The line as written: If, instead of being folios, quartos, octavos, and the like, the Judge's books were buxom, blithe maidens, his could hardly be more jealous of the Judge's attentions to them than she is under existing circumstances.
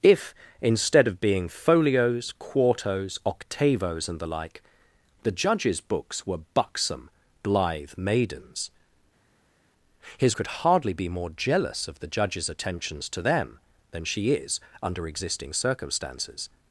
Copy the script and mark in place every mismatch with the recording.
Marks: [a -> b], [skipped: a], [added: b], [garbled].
If, instead of being folios, quartos, octavos, and the like, the Judge's books were buxom, blithe maidens, his could hardly be more jealous of the Judge's attentions to them than she is under existing circumstances.